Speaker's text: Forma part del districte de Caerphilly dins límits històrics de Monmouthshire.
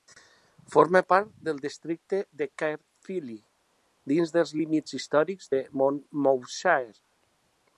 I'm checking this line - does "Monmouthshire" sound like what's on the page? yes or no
yes